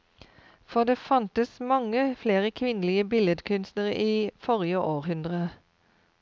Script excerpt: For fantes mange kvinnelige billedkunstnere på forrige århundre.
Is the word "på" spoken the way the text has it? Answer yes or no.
no